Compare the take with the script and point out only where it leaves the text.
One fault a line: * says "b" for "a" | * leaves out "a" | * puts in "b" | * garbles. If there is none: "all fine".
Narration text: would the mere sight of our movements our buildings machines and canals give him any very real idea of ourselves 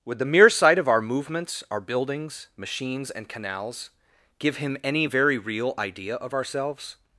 all fine